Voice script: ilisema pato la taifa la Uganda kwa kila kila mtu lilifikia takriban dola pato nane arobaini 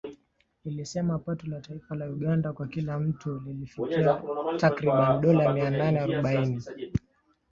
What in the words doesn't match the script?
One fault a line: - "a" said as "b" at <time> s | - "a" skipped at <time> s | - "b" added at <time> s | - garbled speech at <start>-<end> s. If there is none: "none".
- "kila" skipped at 3.0 s
- "pato" said as "mia" at 5.5 s